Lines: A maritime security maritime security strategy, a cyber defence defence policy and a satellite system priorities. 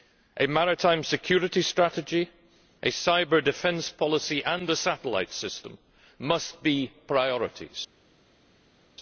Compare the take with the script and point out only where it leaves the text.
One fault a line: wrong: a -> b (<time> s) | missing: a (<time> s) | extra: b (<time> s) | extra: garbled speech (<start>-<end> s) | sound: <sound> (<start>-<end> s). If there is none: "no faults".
missing: maritime security (1.6 s)
missing: defence (3.9 s)
extra: must be (6.2 s)